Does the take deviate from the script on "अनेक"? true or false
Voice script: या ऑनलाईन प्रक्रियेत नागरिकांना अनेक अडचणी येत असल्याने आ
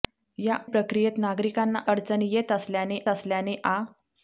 true